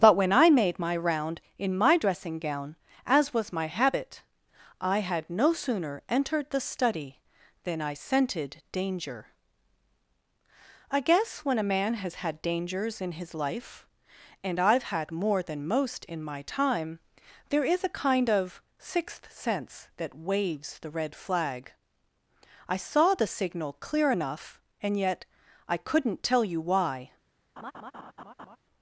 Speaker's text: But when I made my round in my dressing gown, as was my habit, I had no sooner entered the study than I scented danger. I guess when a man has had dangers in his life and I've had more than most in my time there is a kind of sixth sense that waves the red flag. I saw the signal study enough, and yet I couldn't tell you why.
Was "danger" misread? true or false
false